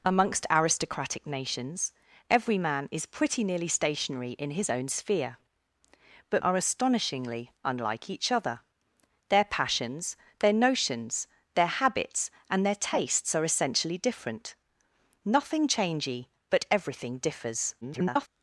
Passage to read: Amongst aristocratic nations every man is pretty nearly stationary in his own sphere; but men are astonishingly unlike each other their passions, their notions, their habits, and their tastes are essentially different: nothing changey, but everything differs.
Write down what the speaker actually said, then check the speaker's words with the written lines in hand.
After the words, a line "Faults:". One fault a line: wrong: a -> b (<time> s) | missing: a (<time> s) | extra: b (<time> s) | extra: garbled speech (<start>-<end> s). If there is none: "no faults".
Amongst aristocratic nations every man is pretty nearly stationary in his own sphere; but are astonishingly unlike each other their passions, their notions, their habits, and their tastes are essentially different: nothing changey, but everything differs. [garbled]
Faults:
missing: men (6.4 s)
extra: garbled speech (17.8-18.3 s)